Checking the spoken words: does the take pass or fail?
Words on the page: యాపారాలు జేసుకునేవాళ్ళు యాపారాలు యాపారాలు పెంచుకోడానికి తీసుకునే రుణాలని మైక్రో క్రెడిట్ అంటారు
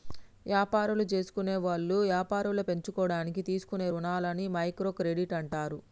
fail